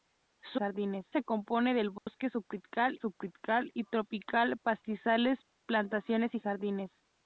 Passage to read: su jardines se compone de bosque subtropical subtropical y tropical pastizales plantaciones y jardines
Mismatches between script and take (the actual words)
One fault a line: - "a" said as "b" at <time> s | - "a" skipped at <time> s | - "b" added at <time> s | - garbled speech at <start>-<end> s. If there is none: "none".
none